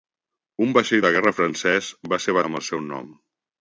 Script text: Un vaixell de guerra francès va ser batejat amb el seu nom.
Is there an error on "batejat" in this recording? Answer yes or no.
yes